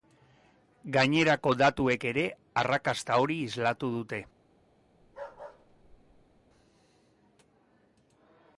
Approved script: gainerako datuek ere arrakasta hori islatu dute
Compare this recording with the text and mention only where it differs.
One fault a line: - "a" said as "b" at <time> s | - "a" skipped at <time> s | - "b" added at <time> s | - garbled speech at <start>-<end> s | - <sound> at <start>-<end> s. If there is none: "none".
- bark at 5.0-6.4 s